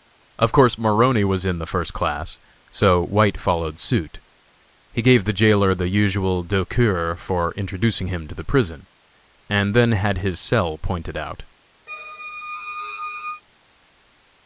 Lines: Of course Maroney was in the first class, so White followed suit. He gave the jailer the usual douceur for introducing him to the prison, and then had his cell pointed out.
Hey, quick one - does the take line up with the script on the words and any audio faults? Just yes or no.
no